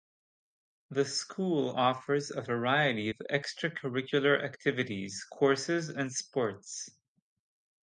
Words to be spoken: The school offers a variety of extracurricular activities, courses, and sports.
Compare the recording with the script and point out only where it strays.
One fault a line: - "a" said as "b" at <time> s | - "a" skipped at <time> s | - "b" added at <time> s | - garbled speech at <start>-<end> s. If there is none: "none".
none